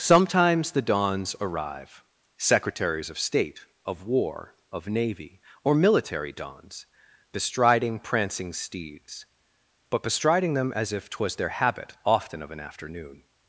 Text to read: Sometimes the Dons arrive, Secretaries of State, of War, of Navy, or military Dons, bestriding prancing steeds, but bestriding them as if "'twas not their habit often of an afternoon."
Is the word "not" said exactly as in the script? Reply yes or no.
no